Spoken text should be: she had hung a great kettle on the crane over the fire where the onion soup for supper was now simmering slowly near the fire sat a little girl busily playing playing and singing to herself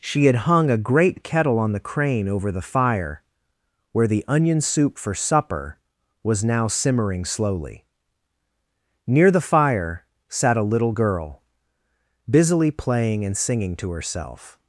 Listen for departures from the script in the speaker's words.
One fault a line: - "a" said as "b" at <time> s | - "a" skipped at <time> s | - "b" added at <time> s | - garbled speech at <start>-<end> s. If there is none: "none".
- "playing" skipped at 13.3 s